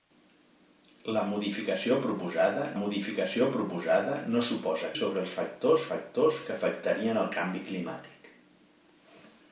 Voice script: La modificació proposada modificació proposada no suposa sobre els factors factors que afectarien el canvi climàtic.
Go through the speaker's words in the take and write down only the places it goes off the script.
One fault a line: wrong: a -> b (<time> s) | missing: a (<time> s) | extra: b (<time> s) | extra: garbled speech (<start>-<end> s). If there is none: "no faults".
no faults